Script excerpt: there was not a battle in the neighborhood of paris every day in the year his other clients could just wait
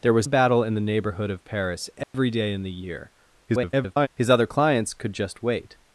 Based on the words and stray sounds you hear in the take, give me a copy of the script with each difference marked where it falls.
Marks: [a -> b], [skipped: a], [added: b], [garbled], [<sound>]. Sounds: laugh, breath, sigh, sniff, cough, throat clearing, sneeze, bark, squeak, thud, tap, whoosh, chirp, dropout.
there was [skipped: not] a battle in the neighborhood of paris every [dropout] day in the year [garbled] his other clients could just wait